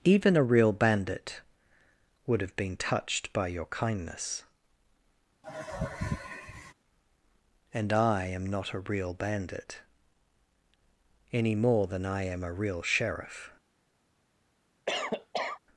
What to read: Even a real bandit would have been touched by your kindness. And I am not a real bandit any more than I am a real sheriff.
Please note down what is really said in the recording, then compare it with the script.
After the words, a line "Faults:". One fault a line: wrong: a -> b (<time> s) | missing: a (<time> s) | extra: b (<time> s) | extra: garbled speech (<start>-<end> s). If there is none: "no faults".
Even a real bandit would have been touched by your kindness. And I am not a real bandit any more than I am a real sheriff.
Faults:
no faults